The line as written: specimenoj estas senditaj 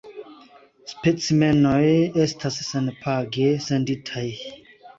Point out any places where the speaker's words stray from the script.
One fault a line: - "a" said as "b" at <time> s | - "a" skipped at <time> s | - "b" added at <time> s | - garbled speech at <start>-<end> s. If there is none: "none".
- "senpage" added at 2.7 s